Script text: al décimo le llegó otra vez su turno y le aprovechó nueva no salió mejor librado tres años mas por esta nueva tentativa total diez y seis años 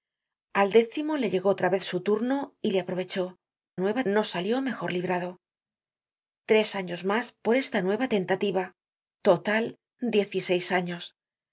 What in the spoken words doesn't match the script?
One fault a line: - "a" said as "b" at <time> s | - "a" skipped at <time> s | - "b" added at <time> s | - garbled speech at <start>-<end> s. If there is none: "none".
none